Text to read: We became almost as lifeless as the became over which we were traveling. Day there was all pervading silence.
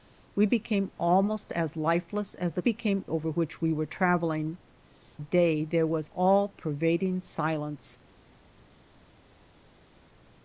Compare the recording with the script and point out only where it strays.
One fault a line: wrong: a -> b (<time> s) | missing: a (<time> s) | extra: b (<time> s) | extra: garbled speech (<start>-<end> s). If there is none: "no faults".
no faults